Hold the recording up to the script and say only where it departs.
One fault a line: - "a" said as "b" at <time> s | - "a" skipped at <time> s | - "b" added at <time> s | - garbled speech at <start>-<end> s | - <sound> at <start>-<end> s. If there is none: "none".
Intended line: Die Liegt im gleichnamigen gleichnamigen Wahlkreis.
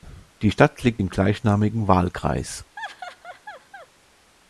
- "Stadt" added at 0.5 s
- "gleichnamigen" skipped at 1.9 s
- laugh at 2.8-3.9 s